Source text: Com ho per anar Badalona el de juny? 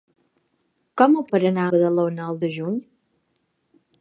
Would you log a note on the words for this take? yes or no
no